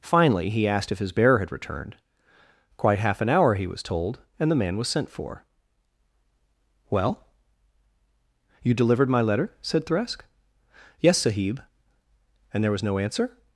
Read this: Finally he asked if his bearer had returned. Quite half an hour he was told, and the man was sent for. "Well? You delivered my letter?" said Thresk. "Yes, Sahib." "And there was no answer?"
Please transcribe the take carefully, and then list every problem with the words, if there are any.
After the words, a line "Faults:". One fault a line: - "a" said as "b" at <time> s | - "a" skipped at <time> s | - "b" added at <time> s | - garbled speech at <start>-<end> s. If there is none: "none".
Finally he asked if his bearer had returned. Quite half an hour he was told, and the man was sent for. "Well? You delivered my letter?" said Thresk. "Yes, Sahib." "And there was no answer?"
Faults:
none